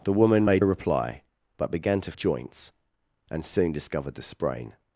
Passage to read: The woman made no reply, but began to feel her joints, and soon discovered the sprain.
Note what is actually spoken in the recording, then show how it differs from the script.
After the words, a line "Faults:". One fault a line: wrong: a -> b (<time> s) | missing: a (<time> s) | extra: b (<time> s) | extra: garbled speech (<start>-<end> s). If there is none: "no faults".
The woman made reply, but began to joints, and soon discovered the sprain.
Faults:
missing: no (0.6 s)
missing: feel her (2.1 s)